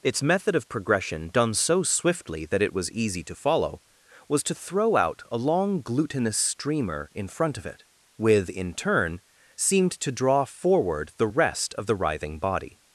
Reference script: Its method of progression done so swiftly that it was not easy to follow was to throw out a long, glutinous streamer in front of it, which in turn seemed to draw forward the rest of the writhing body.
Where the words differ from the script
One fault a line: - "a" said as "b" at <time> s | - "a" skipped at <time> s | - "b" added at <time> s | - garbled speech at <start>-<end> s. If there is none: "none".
- "not" skipped at 2.9 s
- "which" said as "with" at 8.2 s